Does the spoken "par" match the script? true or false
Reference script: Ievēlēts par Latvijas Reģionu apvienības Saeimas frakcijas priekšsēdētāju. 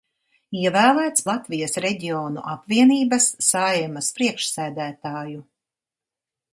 false